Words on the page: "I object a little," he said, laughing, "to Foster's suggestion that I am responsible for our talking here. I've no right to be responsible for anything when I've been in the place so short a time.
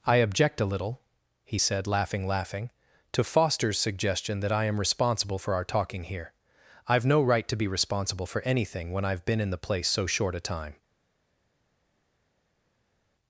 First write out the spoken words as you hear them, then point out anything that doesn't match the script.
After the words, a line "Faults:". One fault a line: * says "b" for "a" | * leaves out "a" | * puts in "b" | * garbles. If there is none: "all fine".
"I object a little," he said, laughing laughing, "to Foster's suggestion that I am responsible for our talking here. I've no right to be responsible for anything when I've been in the place so short a time.
Faults:
* puts in "laughing"